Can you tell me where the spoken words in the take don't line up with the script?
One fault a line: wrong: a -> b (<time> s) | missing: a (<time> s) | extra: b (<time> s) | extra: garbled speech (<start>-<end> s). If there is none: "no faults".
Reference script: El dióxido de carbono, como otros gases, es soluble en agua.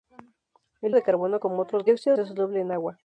missing: dióxido (0.9 s)
wrong: gases -> dióxido (1.9 s)